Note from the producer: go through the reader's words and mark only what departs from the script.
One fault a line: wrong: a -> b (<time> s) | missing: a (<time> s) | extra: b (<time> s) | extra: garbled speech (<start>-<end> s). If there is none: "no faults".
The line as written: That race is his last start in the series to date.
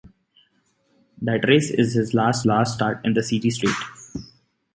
extra: last (2.5 s)
missing: to (3.6 s)